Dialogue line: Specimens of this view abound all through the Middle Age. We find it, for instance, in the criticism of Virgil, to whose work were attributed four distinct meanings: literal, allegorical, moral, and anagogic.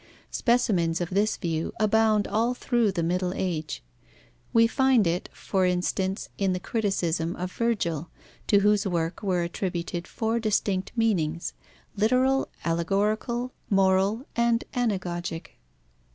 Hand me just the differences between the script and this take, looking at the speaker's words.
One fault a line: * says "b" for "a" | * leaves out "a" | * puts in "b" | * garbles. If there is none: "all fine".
all fine